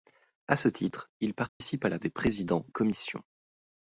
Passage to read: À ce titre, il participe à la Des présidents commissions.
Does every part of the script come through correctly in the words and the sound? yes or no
no